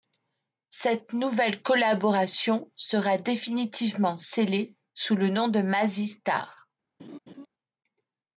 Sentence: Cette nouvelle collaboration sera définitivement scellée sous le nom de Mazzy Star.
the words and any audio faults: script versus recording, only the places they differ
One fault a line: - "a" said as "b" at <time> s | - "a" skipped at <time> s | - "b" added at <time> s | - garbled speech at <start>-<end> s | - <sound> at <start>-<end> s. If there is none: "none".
- laugh at 7.0-7.5 s